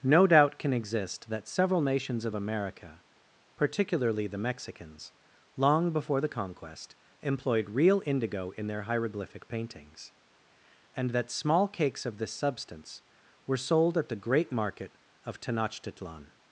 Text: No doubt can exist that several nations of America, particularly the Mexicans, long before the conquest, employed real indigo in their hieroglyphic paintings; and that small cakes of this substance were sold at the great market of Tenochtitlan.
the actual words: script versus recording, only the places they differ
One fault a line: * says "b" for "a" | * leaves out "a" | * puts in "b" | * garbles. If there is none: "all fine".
all fine